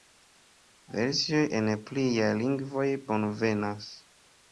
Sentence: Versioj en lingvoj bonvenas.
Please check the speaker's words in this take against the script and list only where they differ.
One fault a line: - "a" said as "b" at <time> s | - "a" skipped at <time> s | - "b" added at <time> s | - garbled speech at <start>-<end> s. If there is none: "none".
- "pliaj" added at 1.9 s